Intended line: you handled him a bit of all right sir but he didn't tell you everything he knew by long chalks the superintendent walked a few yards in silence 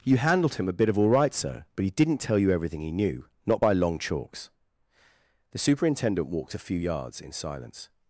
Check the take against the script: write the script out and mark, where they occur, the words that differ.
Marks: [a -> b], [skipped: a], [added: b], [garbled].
you handled him a bit of all right sir but he didn't tell you everything he knew [added: not] by long chalks the superintendent walked a few yards in silence